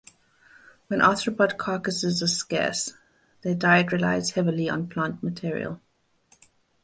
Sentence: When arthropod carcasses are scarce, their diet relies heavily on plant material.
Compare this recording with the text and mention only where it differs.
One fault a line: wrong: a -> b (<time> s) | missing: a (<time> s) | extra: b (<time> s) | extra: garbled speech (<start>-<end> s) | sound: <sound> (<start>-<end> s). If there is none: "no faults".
no faults